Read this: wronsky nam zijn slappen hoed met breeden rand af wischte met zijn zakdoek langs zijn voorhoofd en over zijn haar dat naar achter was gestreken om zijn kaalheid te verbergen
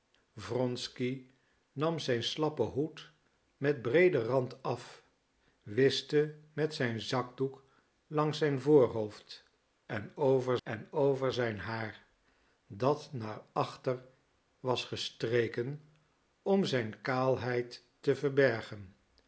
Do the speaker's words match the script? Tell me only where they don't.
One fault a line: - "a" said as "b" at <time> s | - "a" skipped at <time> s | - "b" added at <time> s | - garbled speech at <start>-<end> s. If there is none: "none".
- "en over" added at 10.6 s